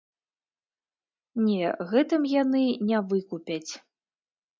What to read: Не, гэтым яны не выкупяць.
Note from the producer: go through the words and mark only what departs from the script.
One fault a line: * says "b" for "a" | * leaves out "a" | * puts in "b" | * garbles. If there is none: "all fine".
all fine